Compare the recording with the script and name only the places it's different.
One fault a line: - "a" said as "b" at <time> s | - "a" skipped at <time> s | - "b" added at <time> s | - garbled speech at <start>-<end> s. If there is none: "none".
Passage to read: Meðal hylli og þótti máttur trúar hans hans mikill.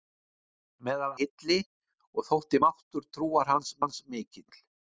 none